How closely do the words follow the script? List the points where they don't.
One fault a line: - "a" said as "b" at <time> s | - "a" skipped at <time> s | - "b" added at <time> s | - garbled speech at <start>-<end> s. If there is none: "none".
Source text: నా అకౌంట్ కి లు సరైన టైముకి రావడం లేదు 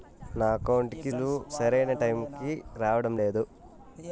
none